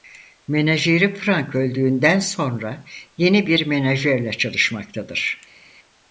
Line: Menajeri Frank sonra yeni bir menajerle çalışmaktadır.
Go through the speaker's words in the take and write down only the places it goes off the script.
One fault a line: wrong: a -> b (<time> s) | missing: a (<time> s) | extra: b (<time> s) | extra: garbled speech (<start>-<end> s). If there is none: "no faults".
extra: öldüğünden (1.6 s)